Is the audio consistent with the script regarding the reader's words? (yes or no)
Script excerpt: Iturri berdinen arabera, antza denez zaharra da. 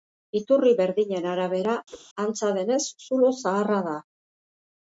no